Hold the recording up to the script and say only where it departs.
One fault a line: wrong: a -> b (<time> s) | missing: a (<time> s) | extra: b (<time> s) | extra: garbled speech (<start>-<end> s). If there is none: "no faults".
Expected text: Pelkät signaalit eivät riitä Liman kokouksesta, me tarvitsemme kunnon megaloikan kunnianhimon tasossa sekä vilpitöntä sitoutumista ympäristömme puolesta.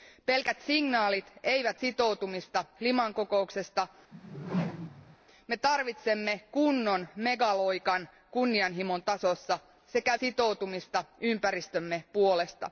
wrong: riitä -> sitoutumista (1.8 s)
missing: vilpitöntä (10.2 s)